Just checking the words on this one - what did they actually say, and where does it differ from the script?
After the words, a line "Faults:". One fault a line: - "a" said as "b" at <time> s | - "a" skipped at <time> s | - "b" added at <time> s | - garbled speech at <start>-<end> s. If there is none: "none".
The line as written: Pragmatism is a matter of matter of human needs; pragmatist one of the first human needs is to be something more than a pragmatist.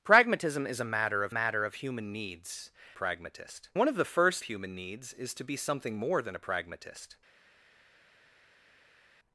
Pragmatism is a matter of matter of human needs; pragmatist one of the first human needs is to be something more than a pragmatist.
Faults:
none